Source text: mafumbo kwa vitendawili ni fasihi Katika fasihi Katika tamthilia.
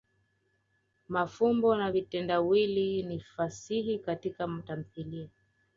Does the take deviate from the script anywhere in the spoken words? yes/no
yes